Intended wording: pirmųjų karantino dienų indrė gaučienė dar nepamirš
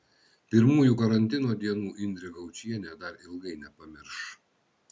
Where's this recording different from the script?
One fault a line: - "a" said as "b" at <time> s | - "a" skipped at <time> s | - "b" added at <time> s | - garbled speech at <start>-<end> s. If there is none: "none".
- "ilgai" added at 3.3 s